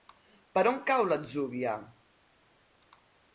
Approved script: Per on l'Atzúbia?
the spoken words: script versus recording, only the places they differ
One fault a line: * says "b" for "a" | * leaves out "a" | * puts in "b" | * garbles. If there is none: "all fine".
* puts in "cau"